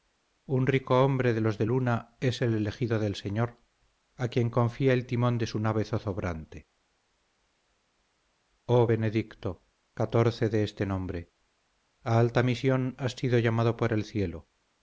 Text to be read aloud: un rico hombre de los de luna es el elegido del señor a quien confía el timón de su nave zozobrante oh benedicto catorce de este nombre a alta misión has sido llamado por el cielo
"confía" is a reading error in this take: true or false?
false